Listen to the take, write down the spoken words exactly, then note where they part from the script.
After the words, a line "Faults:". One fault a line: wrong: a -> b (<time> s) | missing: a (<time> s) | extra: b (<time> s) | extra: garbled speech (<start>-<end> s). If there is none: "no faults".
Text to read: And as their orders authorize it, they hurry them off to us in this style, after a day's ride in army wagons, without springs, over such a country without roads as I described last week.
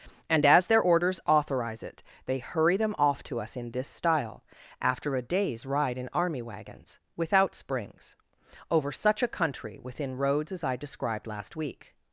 And as their orders authorize it, they hurry them off to us in this style, after a day's ride in army wagons, without springs, over such a country within roads as I described last week.
Faults:
wrong: without -> within (9.8 s)